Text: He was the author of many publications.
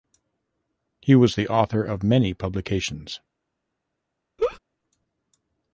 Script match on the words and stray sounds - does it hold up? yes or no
no